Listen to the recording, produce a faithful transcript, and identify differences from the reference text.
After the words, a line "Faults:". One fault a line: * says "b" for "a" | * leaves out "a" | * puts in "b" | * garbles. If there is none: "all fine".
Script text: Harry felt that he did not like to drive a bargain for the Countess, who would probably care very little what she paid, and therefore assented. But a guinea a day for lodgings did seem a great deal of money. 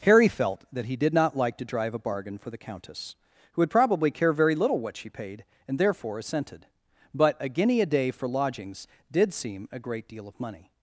Harry felt that he did not like to drive a bargain for the Countess, who would probably care very little what she paid, and therefore assented. But a guinea a day for lodgings did seem a great deal of money.
Faults:
all fine